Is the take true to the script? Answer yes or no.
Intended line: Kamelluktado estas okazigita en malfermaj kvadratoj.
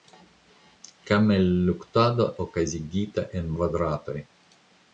no